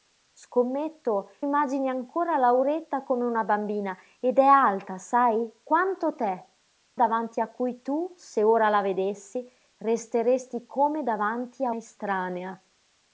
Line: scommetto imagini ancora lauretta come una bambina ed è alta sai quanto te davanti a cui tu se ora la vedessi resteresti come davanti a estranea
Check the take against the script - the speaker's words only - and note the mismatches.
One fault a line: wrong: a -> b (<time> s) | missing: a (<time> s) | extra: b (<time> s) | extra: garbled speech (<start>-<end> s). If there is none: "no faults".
no faults